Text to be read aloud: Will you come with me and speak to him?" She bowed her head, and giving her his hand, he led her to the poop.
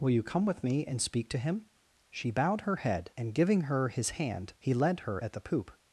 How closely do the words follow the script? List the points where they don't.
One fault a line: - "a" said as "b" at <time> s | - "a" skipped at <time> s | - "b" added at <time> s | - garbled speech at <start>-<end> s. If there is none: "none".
- "to" said as "at" at 5.2 s